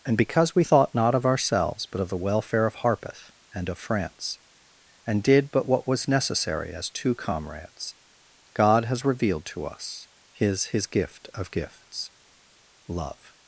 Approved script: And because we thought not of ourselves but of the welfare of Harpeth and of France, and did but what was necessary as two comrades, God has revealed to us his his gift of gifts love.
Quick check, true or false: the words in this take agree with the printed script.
true